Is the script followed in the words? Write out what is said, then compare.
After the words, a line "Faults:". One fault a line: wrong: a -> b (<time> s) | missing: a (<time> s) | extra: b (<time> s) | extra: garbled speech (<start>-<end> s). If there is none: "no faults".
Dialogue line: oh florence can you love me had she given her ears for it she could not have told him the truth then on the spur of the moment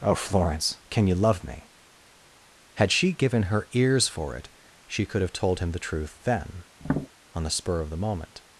oh florence can you love me had she given her ears for it she could have told him the truth then on the spur of the moment
Faults:
missing: not (5.2 s)